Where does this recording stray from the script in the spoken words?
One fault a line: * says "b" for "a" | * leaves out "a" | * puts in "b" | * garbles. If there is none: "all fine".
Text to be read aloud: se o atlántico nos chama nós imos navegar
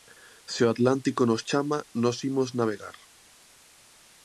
all fine